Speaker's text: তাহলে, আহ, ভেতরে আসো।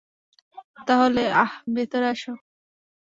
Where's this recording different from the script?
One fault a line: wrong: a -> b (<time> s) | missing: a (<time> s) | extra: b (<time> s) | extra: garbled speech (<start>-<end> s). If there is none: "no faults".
no faults